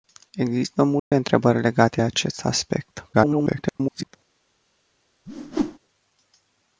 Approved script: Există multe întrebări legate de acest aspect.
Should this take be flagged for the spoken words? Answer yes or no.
yes